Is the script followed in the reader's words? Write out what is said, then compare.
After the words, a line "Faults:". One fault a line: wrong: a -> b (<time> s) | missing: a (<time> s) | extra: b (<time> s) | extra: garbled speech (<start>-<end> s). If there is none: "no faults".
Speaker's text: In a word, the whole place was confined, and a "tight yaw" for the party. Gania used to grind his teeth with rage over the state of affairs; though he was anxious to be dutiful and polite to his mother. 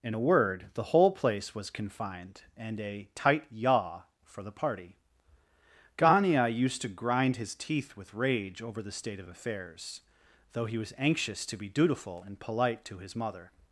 In a word, the whole place was confined, and a "tight yaw" for the party. Gania used to grind his teeth with rage over the state of affairs; though he was anxious to be dutiful and polite to his mother.
Faults:
no faults